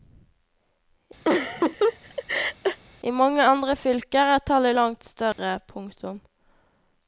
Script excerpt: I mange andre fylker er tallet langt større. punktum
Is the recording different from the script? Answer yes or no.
no